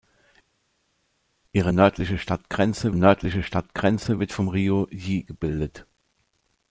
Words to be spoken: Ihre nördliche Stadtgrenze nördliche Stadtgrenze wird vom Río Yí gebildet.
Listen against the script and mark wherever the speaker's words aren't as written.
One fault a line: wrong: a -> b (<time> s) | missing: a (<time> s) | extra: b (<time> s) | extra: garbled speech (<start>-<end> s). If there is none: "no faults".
no faults